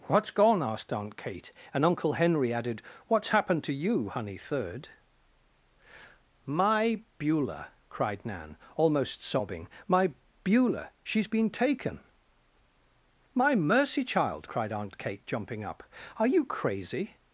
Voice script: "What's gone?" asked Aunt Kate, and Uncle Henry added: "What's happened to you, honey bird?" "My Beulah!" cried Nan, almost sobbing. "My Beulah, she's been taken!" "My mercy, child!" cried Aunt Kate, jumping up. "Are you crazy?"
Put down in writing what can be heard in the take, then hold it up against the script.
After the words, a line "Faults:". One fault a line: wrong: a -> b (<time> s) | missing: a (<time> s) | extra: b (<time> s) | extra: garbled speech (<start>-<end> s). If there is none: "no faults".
"What's gone?" asked Aunt Kate, and Uncle Henry added: "What's happened to you, honey third?" "My Beulah!" cried Nan, almost sobbing. "My Beulah, she's been taken!" "My mercy, child!" cried Aunt Kate, jumping up. "Are you crazy?"
Faults:
wrong: bird -> third (4.4 s)